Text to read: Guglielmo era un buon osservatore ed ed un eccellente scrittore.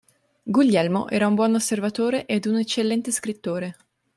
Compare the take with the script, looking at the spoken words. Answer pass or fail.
fail